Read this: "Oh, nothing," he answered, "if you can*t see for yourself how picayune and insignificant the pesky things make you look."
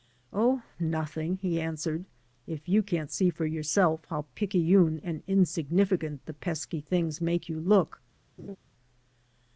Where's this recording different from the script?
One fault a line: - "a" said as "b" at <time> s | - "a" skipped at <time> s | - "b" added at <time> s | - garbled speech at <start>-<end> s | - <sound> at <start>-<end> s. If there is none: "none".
- laugh at 8.4-8.6 s